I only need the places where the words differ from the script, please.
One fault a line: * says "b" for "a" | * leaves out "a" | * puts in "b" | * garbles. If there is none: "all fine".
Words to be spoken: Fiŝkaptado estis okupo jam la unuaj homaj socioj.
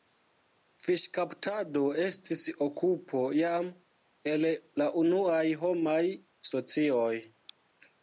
* puts in "el"